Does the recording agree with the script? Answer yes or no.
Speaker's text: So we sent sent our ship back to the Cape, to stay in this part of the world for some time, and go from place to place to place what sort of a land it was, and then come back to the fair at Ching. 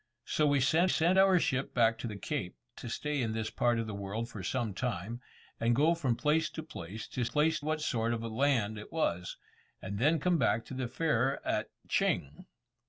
yes